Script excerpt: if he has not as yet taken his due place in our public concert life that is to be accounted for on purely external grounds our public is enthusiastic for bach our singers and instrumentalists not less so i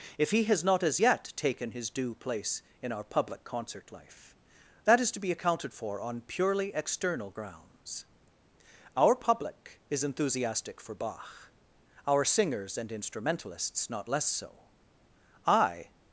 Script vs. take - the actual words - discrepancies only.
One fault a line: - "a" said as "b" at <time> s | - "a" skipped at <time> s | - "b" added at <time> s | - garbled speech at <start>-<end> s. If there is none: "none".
none